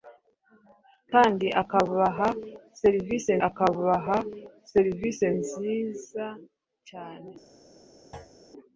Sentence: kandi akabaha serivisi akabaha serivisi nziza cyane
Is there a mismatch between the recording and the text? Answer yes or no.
no